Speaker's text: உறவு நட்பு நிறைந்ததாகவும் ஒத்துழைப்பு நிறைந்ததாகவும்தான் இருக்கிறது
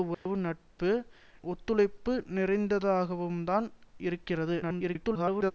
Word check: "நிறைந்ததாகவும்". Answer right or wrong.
wrong